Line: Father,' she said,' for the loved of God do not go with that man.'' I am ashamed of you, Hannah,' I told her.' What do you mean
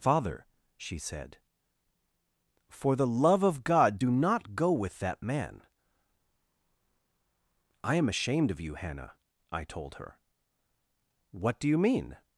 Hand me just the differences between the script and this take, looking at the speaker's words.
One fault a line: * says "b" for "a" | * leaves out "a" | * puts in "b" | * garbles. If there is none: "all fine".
* says "love" for "loved"